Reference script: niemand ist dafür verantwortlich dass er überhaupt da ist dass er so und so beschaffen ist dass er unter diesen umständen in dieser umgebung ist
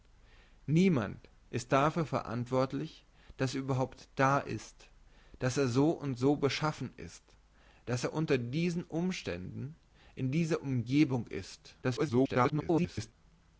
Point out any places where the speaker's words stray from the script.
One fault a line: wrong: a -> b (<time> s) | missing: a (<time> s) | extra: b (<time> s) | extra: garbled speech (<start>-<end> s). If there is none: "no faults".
extra: garbled speech (11.8-13.1 s)